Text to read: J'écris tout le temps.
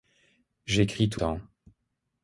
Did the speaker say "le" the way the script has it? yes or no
no